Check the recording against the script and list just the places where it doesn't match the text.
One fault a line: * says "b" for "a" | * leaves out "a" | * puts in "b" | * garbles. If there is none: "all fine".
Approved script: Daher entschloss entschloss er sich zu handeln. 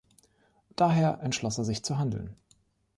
* leaves out "entschloss"